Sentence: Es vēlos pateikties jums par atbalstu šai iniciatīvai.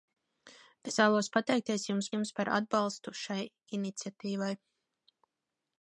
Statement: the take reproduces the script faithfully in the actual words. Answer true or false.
false